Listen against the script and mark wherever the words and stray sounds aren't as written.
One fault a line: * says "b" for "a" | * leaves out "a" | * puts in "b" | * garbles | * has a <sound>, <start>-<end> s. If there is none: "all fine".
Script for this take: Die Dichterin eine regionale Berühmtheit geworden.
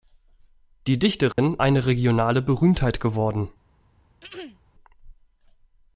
* has a dropout, 1.3-1.4 s
* has a throat clearing, 4.2-4.6 s